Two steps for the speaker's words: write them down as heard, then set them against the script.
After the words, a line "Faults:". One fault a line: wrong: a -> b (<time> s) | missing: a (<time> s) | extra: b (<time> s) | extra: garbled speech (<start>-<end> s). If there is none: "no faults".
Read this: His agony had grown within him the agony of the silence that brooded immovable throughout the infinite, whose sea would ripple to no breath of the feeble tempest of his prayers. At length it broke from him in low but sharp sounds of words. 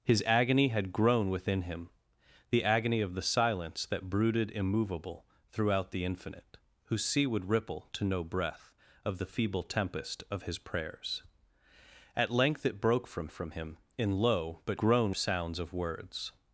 His agony had grown within him the agony of the silence that brooded immovable throughout the infinite, whose sea would ripple to no breath of the feeble tempest of his prayers. At length it broke from from him in low but grown sounds of words.
Faults:
extra: from (13.3 s)
wrong: sharp -> grown (14.8 s)